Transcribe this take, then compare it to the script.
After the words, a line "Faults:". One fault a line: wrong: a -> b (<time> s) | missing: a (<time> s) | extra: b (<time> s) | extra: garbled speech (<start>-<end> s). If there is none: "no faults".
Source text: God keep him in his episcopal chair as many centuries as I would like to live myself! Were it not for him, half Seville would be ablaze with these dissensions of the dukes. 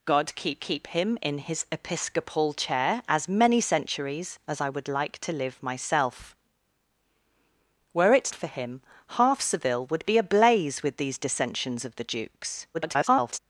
God keep keep him in his episcopal chair as many centuries as I would like to live myself! Were it for him, half Seville would be ablaze with these dissensions of the dukes. [garbled]
Faults:
extra: keep (0.6 s)
missing: not (8.3 s)
extra: garbled speech (12.7-13.4 s)